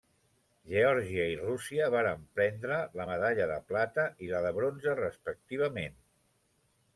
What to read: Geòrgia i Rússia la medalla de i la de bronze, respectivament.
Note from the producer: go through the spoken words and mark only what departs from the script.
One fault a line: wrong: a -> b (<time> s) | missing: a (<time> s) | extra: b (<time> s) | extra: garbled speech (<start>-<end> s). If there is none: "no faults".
extra: varen prendre (1.9 s)
extra: plata (3.7 s)